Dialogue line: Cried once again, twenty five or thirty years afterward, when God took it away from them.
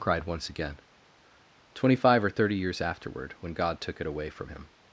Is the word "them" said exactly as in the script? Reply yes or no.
no